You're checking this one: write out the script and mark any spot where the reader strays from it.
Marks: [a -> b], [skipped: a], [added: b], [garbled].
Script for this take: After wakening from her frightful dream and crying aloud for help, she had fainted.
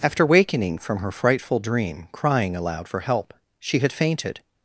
After wakening from her frightful dream [skipped: and] crying aloud for help, she had fainted.